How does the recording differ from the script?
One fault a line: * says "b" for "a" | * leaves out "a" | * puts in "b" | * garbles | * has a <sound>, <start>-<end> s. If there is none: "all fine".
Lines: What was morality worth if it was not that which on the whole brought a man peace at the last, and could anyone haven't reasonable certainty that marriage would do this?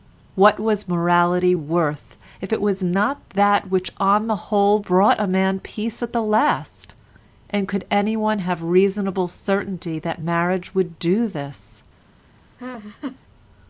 * says "have" for "haven't"
* has a laugh, 12.6-13.2 s